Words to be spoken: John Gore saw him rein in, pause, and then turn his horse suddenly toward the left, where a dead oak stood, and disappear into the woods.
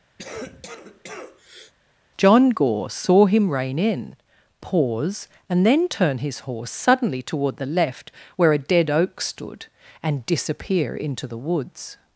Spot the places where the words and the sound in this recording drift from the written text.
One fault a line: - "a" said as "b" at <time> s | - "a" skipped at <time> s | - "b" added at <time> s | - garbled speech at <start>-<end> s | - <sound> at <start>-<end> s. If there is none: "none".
- cough at 0.2-1.7 s